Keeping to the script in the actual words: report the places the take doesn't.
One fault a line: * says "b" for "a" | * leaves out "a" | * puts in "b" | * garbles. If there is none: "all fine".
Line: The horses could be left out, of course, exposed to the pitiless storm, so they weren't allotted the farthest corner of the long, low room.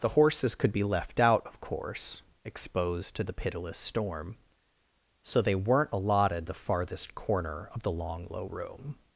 all fine